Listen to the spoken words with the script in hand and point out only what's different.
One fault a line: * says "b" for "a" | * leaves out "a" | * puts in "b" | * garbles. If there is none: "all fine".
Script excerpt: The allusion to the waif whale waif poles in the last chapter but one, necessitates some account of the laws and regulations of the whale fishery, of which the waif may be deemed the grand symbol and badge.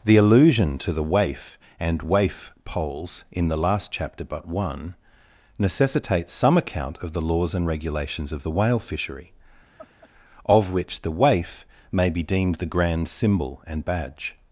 * says "and" for "whale"